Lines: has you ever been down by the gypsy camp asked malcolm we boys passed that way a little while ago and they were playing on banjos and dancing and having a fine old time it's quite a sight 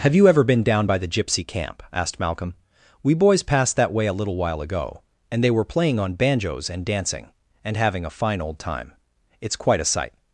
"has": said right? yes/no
no